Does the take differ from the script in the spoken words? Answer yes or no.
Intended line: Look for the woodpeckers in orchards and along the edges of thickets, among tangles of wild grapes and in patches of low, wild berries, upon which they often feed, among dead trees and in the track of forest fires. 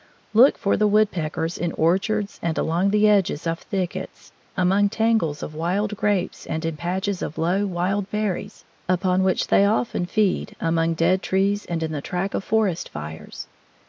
no